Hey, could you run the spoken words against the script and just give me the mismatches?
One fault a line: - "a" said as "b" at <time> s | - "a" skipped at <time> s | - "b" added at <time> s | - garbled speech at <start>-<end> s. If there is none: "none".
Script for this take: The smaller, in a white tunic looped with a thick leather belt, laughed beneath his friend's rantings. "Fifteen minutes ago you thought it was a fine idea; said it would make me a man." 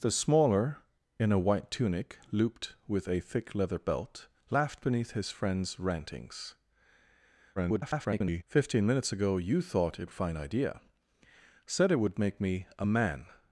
- garbled speech at 7.6-8.4 s
- "was a" skipped at 10.1 s